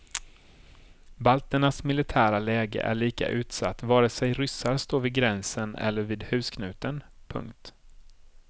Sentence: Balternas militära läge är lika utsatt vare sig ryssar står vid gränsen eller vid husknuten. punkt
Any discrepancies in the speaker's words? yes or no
no